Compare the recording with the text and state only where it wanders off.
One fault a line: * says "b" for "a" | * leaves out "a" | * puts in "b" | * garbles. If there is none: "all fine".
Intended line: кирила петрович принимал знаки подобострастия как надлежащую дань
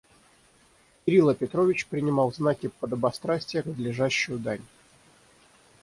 * leaves out "как"